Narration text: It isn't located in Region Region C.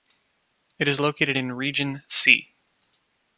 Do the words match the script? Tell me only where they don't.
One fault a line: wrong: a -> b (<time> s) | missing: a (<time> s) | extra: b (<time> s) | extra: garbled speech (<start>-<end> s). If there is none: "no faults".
wrong: isn't -> is (0.9 s)
missing: Region (2.0 s)